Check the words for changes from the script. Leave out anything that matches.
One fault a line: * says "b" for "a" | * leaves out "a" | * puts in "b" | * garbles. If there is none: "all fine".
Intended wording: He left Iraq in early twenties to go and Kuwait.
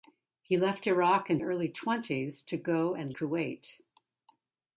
all fine